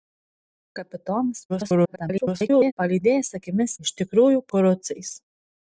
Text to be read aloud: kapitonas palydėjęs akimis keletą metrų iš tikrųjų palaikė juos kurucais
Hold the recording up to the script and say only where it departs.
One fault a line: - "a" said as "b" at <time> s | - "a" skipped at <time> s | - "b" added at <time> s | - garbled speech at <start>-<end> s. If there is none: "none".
- garbled speech at 1.5-2.7 s
- "keletą metrų" skipped at 3.8 s
- "palaikė juos" skipped at 4.5 s